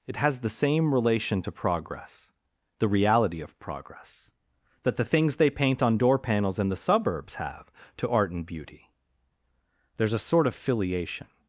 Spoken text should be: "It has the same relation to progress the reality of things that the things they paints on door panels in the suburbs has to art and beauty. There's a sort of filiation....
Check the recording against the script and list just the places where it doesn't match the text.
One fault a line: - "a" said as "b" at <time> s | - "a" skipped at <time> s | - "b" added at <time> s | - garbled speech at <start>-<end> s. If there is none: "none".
- "things" said as "progress" at 3.6 s
- "paints" said as "paint" at 5.5 s
- "has" said as "have" at 7.4 s